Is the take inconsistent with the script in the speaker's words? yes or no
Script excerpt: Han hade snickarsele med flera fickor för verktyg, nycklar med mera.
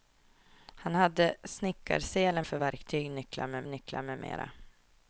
yes